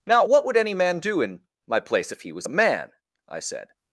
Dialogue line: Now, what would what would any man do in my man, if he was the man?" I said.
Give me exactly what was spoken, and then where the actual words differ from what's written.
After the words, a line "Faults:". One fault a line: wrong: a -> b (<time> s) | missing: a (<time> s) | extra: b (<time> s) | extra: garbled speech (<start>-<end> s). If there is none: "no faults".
Now, what would any man do in my place, if he was a man?" I said.
Faults:
missing: what would (0.6 s)
wrong: man -> place (1.8 s)
wrong: the -> a (2.4 s)